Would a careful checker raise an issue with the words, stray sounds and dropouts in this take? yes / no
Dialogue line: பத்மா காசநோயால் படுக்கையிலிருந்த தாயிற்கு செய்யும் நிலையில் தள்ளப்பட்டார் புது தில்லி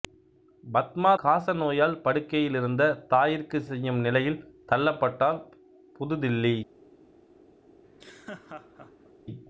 yes